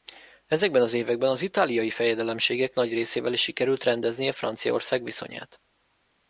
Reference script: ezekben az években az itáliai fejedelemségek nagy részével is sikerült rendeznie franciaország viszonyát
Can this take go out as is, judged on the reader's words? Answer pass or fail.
pass